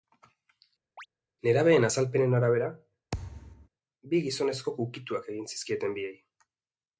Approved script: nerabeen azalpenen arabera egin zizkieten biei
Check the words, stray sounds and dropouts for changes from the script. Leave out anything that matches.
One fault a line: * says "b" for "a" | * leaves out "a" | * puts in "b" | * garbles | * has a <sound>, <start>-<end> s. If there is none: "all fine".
* has a chirp, 1.0-1.1 s
* has a thud, 3.1-3.7 s
* puts in "bi gizonezkok ukituak"